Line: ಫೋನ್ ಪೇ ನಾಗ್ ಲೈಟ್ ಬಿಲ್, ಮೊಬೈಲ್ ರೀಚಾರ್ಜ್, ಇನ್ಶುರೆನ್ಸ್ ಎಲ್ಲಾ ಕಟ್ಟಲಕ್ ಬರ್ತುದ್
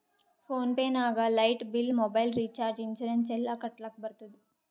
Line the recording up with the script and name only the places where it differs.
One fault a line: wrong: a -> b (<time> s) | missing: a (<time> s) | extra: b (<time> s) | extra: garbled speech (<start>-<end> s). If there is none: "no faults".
no faults